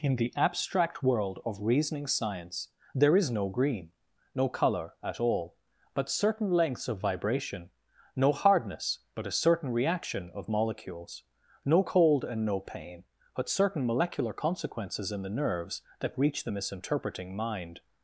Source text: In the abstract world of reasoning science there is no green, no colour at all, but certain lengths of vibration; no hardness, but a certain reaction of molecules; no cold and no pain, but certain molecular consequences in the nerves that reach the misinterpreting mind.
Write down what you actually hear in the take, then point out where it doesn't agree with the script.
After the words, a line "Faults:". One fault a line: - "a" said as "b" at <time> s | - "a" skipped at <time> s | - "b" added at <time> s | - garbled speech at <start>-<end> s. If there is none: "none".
In the abstract world of reasoning science there is no green, no colour at all, but certain lengths of vibration; no hardness, but a certain reaction of molecules; no cold and no pain, but certain molecular consequences in the nerves that reach the misinterpreting mind.
Faults:
none